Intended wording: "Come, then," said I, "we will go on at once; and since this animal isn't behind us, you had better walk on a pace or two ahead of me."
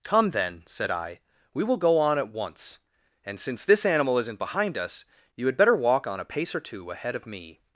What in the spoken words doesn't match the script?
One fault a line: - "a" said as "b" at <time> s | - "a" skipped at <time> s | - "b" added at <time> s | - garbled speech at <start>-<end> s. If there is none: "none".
none